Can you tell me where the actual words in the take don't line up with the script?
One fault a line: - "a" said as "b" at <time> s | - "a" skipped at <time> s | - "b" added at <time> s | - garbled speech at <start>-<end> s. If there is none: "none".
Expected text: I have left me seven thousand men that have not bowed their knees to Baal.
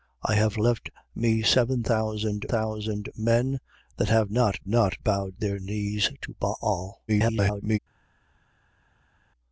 - "thousand" added at 2.5 s
- "not" added at 4.7 s
- garbled speech at 7.1-7.8 s